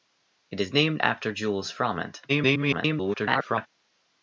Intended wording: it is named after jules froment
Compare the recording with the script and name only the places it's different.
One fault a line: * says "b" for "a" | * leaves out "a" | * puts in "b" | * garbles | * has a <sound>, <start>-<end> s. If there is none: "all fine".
* garbles